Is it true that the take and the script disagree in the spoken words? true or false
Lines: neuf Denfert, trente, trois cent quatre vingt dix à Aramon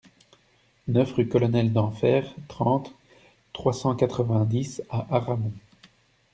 true